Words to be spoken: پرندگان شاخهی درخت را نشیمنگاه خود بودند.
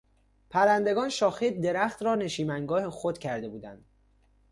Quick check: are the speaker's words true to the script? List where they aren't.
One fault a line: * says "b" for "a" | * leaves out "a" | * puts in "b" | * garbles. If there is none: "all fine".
* puts in "کرده"